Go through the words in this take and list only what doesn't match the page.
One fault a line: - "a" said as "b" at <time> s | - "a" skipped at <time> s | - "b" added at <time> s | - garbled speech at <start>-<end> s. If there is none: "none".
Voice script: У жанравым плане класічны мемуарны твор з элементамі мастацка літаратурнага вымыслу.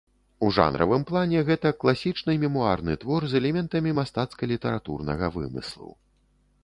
- "гэта" added at 1.5 s